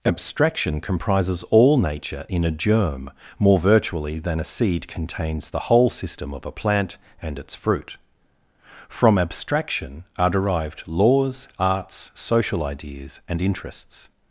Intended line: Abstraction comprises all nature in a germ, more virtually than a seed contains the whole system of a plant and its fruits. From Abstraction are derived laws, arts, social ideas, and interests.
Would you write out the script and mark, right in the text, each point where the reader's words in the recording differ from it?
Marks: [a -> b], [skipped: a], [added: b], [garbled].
Abstraction comprises all nature in a germ, more virtually than a seed contains the whole system of a plant and its [fruits. -> fruit] From Abstraction are derived laws, arts, social ideas, and interests.